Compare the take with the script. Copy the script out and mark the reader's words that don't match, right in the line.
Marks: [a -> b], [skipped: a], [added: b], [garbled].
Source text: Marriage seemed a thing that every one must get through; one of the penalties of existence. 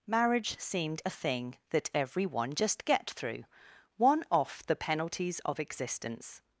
Marriage seemed a thing that every one [must -> just] get through; one [of -> off] the penalties of existence.